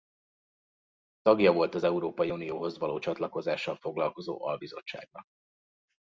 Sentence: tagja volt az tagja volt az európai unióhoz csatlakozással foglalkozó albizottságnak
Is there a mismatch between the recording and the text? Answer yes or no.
yes